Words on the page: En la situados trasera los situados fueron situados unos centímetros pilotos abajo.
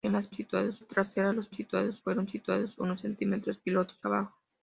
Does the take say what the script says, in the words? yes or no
yes